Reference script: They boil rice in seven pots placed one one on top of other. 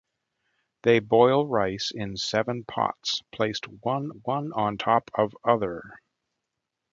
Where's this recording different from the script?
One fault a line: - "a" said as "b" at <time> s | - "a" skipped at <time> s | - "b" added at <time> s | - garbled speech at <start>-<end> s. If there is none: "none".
none